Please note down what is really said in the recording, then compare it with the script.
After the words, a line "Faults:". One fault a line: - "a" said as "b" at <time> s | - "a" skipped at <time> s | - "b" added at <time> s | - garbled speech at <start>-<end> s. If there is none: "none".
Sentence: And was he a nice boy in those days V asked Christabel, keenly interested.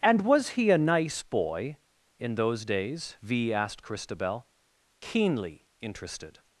And was he a nice boy in those days V asked Christabel, keenly interested.
Faults:
none